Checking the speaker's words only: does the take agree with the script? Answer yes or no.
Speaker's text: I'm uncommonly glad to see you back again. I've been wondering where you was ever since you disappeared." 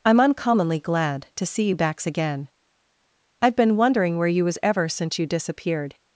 no